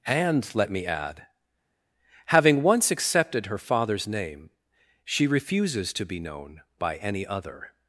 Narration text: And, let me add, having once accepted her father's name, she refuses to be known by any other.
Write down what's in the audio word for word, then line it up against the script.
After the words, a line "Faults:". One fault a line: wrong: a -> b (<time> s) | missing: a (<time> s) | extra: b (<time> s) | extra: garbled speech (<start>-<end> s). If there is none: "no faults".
And, let me add, having once accepted her father's name, she refuses to be known by any other.
Faults:
no faults